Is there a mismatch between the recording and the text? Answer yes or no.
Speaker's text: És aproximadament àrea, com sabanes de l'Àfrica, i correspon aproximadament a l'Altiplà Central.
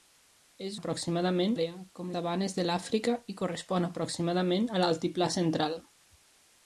no